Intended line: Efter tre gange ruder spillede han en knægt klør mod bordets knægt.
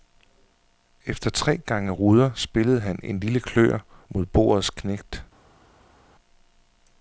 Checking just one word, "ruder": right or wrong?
right